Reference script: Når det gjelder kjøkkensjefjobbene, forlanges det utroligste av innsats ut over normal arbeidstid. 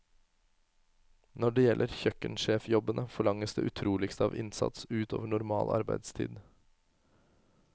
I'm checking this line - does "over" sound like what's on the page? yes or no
yes